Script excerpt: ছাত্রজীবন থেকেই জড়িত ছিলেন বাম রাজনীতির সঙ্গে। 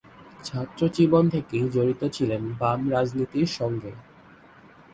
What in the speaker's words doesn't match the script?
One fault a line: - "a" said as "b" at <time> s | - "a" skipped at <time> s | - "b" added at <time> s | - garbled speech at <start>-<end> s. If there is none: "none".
none